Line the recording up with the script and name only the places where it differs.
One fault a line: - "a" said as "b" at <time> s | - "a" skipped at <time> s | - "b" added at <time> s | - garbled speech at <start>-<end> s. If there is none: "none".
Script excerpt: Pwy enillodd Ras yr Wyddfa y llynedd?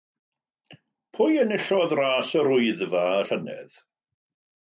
none